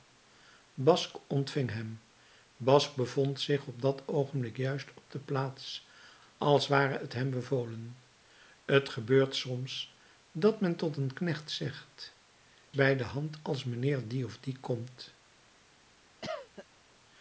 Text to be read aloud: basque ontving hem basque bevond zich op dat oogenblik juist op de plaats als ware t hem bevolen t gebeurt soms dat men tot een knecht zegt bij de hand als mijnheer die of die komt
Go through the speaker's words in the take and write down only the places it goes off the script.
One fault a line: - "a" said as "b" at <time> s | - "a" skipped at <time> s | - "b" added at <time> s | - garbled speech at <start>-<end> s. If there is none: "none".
none